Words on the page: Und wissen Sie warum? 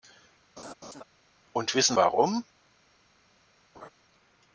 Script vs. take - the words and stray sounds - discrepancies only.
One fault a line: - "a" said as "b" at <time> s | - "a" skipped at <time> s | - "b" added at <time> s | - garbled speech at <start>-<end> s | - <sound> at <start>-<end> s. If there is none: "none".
- laugh at 0.6-1.0 s
- "Sie" skipped at 2.0 s
- laugh at 3.7-3.9 s